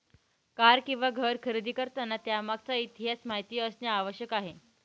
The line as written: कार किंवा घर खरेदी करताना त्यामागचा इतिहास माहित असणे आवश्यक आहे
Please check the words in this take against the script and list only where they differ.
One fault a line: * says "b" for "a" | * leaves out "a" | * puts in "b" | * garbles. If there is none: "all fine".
all fine